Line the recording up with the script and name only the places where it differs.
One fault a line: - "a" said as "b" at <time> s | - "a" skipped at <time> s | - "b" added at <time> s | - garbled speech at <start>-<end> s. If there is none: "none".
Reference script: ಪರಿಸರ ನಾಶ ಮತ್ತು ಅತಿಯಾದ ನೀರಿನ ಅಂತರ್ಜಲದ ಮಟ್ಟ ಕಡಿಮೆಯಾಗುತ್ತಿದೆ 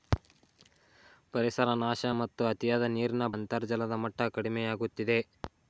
none